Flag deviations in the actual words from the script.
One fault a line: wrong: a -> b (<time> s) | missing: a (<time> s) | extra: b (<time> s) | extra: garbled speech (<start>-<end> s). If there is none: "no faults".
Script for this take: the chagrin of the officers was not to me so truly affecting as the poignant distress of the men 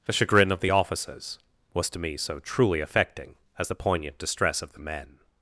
missing: not (1.9 s)